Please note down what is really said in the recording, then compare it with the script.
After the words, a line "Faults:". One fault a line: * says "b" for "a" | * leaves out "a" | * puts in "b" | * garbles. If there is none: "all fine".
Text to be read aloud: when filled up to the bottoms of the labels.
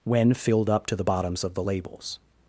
when filled up to the bottoms of the labels.
Faults:
all fine